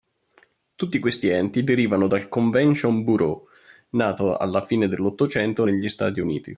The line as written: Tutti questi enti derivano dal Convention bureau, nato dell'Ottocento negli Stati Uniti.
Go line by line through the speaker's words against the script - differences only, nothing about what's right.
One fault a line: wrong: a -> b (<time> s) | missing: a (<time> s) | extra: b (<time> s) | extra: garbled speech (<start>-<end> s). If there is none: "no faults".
extra: alla fine (4.4 s)